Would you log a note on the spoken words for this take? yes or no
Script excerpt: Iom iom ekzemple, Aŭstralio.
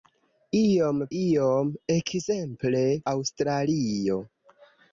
no